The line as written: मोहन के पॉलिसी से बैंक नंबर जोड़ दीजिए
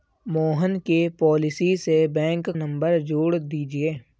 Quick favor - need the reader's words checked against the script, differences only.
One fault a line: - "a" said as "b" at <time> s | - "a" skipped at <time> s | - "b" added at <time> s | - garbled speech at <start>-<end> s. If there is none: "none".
none